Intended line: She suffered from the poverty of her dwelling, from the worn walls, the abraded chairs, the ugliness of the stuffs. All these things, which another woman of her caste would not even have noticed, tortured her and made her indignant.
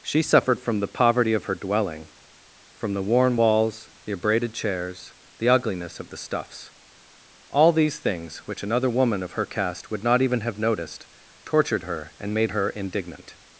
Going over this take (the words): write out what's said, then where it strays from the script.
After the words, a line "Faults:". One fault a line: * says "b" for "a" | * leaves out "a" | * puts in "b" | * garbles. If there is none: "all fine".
She suffered from the poverty of her dwelling, from the worn walls, the abraded chairs, the ugliness of the stuffs. All these things, which another woman of her caste would not even have noticed, tortured her and made her indignant.
Faults:
all fine